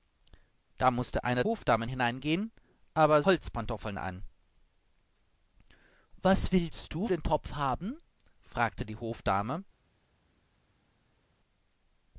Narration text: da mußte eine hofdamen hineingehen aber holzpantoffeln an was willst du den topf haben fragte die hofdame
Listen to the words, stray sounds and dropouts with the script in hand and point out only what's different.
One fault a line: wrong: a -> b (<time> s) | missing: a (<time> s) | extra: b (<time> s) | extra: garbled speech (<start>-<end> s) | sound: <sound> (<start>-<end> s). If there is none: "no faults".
no faults